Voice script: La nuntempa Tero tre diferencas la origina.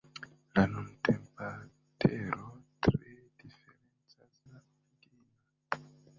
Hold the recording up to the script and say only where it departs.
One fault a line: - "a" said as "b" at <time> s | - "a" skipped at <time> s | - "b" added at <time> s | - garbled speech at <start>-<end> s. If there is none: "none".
none